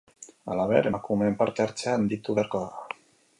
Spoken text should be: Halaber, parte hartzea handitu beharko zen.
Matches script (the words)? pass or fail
fail